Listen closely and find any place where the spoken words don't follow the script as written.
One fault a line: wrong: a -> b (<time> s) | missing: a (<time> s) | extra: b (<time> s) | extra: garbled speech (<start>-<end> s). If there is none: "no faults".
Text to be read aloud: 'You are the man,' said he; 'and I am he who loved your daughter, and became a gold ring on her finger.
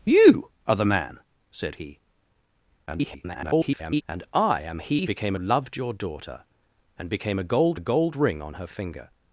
extra: garbled speech (2.9-4.0 s)
wrong: who -> became (5.1 s)
extra: a gold (7.7 s)